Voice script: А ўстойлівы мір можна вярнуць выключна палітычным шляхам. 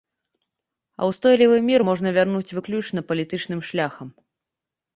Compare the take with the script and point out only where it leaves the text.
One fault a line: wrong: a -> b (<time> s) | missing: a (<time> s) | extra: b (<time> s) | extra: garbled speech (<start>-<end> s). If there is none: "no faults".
no faults